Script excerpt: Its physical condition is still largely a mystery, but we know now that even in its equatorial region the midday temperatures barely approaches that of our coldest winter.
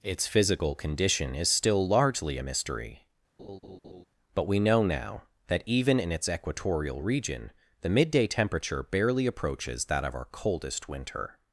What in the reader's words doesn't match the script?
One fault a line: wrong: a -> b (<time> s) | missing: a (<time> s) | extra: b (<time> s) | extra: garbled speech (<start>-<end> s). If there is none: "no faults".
wrong: temperatures -> temperature (8.3 s)